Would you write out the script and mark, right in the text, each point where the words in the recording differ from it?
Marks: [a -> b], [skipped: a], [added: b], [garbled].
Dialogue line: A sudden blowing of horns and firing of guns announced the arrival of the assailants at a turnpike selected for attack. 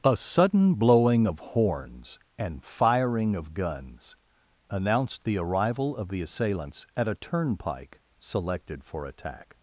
A sudden blowing of horns and firing of guns announced the arrival of the assailants at a turnpike selected for attack.